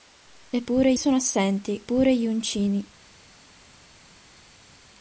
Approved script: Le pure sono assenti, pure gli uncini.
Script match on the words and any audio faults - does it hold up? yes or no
yes